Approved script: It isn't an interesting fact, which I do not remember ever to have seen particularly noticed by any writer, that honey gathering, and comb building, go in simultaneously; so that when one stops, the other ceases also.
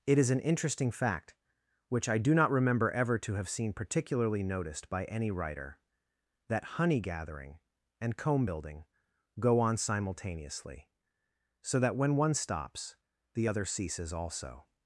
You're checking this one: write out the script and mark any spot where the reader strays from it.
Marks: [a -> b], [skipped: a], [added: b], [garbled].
It [isn't -> is] an interesting fact, which I do not remember ever to have seen particularly noticed by any writer, that honey gathering, and comb building, go [in -> on] simultaneously; so that when one stops, the other ceases also.